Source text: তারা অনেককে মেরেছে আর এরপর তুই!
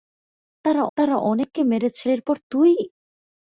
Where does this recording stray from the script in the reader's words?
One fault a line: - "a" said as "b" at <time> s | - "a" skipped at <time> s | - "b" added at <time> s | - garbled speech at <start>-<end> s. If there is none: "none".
- "তারা" added at 1.0 s
- "আর" skipped at 2.1 s